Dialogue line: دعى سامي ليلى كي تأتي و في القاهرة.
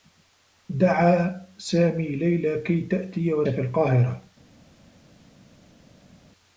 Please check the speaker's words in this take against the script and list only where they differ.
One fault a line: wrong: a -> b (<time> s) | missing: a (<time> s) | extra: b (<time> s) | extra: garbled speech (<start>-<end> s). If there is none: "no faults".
no faults